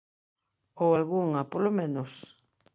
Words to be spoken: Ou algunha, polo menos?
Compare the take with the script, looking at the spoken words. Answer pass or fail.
pass